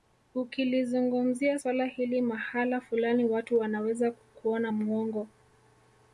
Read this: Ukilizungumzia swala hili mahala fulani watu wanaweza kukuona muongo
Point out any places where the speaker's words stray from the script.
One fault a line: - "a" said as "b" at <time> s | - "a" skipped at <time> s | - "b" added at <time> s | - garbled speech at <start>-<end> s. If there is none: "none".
none